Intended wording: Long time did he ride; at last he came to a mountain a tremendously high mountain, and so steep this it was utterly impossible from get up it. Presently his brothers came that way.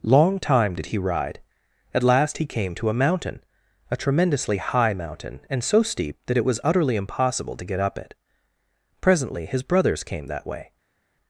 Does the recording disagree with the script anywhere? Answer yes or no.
yes